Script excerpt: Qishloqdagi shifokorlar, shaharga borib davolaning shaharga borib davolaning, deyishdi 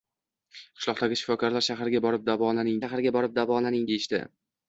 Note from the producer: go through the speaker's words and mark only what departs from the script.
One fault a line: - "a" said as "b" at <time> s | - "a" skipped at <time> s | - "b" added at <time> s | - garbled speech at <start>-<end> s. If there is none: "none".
none